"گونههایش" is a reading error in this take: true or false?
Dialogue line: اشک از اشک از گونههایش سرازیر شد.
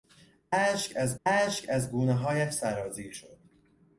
false